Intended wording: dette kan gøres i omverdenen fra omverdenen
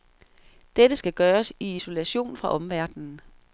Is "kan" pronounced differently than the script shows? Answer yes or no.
yes